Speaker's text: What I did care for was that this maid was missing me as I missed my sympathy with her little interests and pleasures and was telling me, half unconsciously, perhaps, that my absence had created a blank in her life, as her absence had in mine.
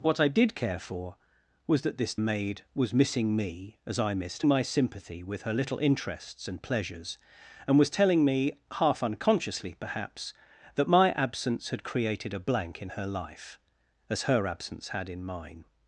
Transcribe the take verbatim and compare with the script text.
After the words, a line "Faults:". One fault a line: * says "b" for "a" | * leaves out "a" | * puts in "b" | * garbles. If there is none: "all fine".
What I did care for was that this maid was missing me as I missed my sympathy with her little interests and pleasures and was telling me, half unconsciously, perhaps, that my absence had created a blank in her life, as her absence had in mine.
Faults:
all fine